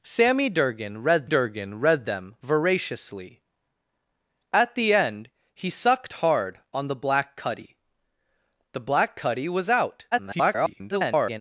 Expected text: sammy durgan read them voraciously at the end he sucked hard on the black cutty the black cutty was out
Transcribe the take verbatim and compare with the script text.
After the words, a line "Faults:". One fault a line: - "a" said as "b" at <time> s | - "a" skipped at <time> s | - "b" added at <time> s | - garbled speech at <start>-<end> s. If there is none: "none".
sammy durgan read durgan read them voraciously at the end he sucked hard on the black cutty the black cutty was out [garbled]
Faults:
- "durgan read" added at 1.2 s
- garbled speech at 10.1-11.4 s